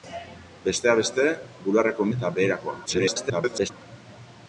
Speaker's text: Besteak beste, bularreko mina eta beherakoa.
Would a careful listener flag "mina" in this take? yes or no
yes